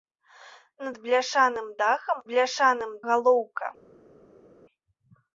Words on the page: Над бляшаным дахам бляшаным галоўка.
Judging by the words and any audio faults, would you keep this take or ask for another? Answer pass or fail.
pass